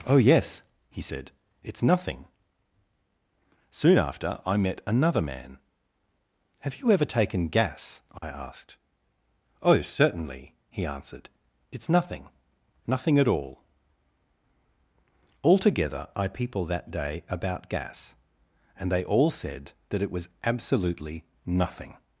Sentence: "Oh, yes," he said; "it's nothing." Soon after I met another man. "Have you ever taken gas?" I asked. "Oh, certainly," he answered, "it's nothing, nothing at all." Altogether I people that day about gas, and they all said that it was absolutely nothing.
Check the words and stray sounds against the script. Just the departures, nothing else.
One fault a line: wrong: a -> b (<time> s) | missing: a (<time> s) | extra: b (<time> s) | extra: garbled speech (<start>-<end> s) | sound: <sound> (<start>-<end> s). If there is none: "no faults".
sound: dropout (8.2-8.2 s)